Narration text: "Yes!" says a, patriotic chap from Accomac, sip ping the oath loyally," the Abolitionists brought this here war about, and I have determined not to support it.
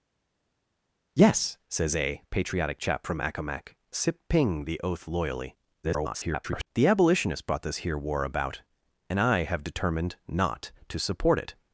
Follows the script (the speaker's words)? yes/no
no